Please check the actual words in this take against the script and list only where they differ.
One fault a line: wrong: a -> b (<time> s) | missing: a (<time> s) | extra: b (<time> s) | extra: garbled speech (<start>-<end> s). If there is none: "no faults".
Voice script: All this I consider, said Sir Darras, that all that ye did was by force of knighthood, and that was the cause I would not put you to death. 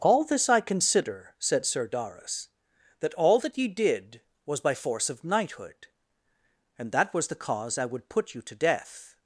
missing: not (8.1 s)